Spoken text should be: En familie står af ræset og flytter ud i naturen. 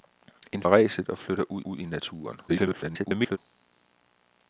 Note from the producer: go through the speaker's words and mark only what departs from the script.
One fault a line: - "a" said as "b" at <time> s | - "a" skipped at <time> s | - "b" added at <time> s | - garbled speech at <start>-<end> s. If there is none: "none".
- "familie står" skipped at 0.6 s
- "ud" added at 1.6 s
- garbled speech at 2.5-3.4 s